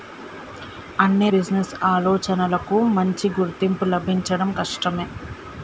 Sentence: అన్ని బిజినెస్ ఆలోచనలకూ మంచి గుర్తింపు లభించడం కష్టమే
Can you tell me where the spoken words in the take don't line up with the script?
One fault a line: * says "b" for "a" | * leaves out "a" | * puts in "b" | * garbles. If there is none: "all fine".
all fine